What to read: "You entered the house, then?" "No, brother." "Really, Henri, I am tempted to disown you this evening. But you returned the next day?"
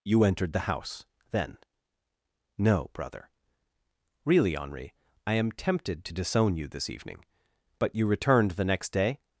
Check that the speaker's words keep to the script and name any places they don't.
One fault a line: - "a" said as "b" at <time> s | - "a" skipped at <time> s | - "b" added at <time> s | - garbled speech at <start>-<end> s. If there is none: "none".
none